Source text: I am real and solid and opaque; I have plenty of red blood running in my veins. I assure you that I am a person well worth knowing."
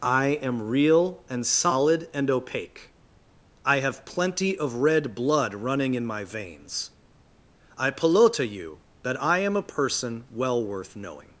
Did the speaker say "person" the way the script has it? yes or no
yes